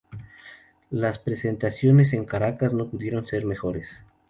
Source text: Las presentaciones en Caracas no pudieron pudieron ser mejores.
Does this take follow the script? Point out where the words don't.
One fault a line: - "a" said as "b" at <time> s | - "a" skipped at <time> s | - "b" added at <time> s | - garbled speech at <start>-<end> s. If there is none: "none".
- "pudieron" skipped at 3.3 s